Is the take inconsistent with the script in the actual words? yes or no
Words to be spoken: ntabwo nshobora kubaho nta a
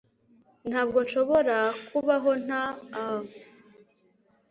no